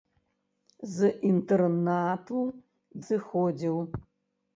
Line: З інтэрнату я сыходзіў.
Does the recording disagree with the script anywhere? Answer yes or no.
yes